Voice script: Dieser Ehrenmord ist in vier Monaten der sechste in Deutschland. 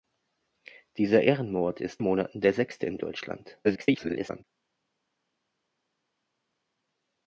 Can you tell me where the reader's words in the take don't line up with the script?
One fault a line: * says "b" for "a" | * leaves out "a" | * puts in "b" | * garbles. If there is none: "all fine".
* leaves out "in vier"
* garbles